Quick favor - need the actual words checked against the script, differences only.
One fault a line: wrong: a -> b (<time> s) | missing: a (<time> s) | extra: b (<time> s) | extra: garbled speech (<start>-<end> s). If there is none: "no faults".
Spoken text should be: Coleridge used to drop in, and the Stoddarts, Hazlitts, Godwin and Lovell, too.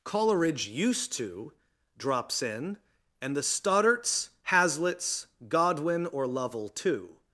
wrong: drop -> drops (2.0 s)
wrong: and -> or (6.1 s)